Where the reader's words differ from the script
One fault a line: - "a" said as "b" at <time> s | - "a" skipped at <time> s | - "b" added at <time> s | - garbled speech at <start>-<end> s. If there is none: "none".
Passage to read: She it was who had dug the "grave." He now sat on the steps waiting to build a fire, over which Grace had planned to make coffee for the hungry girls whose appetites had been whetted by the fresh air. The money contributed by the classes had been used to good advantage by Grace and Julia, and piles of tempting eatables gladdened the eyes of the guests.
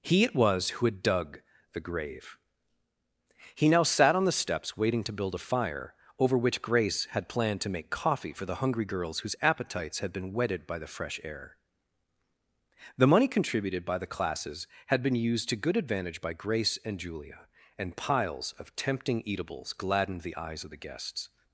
- "She" said as "He" at 0.0 s